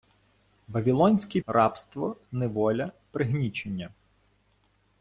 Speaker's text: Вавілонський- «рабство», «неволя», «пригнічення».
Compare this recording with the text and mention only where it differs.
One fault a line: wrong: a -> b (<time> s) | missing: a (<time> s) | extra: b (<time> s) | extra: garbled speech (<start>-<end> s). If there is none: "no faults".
no faults